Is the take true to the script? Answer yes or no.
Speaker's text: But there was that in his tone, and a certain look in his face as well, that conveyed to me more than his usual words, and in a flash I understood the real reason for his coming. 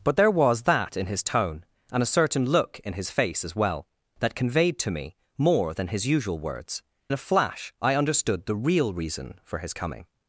no